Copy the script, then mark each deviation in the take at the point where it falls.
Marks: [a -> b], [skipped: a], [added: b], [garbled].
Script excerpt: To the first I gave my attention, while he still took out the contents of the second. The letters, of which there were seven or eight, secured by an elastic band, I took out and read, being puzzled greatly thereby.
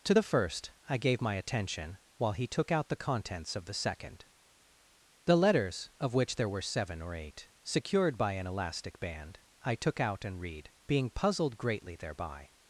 To the first I gave my attention, while he [skipped: still] took out the contents of the second. The letters, of which there were seven or eight, secured by an elastic band, I took out and read, being puzzled greatly thereby.